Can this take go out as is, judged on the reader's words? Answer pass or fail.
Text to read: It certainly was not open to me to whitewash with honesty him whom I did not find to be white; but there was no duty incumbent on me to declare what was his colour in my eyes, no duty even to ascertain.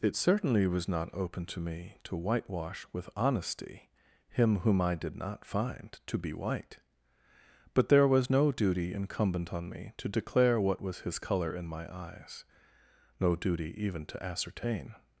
pass